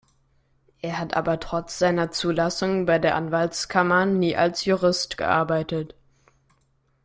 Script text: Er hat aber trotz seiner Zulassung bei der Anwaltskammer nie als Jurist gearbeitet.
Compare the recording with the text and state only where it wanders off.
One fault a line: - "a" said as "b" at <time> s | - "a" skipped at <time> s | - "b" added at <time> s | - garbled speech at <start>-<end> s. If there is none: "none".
none